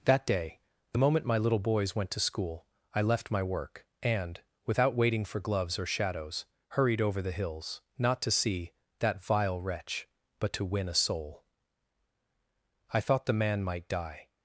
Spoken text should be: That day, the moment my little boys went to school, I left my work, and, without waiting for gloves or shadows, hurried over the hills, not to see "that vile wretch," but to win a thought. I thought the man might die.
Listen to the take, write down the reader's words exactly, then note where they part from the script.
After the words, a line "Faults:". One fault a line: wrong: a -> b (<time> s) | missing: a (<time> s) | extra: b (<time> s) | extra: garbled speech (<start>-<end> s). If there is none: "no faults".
That day, the moment my little boys went to school, I left my work, and, without waiting for gloves or shadows, hurried over the hills, not to see "that vile wretch," but to win a soul. I thought the man might die.
Faults:
wrong: thought -> soul (10.9 s)